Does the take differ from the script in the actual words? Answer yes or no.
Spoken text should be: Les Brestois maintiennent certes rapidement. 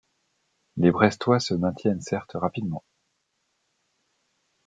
yes